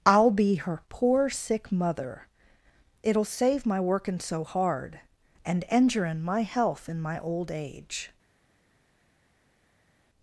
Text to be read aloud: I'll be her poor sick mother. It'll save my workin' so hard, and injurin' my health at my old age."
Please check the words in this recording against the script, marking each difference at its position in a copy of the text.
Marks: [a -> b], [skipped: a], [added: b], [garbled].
I'll be her poor sick mother. It'll save my workin' so hard, and injurin' my health [at -> in] my old age."